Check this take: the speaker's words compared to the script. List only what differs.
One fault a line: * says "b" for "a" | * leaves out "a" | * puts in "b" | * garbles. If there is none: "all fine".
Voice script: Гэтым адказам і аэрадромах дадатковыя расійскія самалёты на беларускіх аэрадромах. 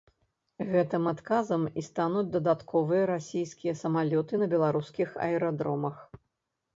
* says "стануць" for "аэрадромах"